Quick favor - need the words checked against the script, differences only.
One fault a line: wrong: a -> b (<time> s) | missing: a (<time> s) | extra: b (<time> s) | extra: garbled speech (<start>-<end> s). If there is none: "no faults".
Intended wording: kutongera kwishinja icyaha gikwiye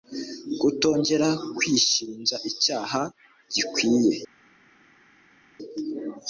no faults